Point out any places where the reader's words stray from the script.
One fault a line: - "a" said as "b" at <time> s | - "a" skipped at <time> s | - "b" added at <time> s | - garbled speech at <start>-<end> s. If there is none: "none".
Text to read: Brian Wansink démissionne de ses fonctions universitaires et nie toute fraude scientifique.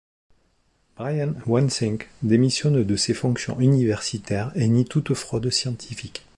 none